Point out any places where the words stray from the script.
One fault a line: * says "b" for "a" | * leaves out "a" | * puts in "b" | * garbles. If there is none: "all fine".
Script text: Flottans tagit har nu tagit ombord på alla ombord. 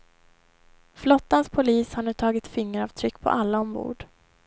* says "polis" for "tagit"
* says "fingeravtryck" for "ombord"